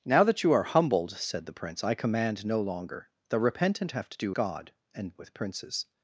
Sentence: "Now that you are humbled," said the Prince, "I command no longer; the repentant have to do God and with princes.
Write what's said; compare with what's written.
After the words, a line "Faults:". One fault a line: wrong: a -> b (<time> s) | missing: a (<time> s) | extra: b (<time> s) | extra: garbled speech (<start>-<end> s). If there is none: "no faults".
"Now that you are humbled," said the Prince, "I command no longer; the repentant have to do God and with princes.
Faults:
no faults